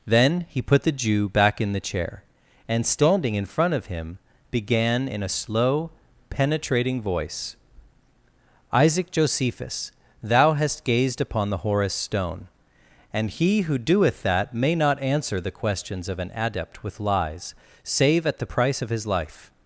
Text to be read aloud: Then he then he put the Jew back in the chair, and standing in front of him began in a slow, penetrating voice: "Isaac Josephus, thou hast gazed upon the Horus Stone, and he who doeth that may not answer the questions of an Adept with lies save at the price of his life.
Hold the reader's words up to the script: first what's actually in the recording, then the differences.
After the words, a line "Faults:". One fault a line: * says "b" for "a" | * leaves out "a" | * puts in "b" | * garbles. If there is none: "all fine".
Then he put the Jew back in the chair, and standing in front of him began in a slow, penetrating voice: "Isaac Josephus, thou hast gazed upon the Horus Stone, and he who doeth that may not answer the questions of an Adept with lies save at the price of his life.
Faults:
* leaves out "then he"